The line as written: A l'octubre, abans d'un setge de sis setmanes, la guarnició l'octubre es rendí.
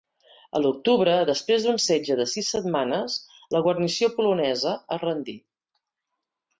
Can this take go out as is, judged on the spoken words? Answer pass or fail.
fail